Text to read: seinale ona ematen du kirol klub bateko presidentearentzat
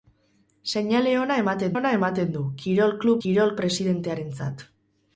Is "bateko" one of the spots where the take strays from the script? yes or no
yes